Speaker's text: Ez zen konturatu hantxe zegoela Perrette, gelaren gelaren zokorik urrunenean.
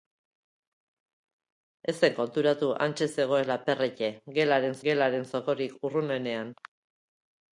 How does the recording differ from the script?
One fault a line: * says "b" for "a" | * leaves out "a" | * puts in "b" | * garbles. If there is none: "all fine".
all fine